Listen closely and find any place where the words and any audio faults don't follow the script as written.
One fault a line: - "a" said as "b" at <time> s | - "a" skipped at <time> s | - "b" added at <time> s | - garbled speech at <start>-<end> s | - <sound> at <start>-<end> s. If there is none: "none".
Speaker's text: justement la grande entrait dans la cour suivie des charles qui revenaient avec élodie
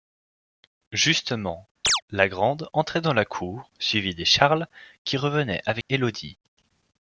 - chirp at 1.8-2.0 s
- dropout at 5.8-5.9 s